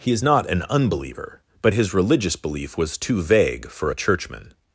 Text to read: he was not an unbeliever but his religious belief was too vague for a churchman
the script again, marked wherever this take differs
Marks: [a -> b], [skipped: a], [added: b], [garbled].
he [was -> is] not an unbeliever but his religious belief was too vague for a churchman